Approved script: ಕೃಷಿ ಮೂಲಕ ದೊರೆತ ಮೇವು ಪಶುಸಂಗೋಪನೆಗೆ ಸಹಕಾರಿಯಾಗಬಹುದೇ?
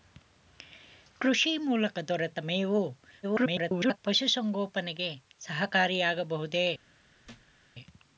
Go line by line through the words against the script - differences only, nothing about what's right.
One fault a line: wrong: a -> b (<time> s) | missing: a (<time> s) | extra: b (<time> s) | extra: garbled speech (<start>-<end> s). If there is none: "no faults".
extra: garbled speech (3.2-4.0 s)